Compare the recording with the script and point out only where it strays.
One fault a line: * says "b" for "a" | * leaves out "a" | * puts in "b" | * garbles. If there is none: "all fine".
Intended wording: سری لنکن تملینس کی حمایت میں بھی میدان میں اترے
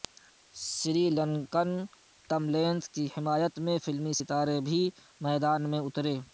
* puts in "فلمی ستارے"